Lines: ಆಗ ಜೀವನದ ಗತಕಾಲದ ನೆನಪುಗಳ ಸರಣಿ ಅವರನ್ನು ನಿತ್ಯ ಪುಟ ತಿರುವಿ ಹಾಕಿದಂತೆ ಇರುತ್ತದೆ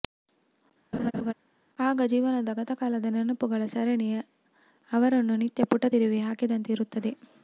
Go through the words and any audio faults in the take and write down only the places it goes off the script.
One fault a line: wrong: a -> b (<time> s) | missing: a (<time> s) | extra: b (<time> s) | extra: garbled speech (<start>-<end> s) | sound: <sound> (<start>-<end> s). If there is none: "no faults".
sound: laugh (0.9-1.3 s)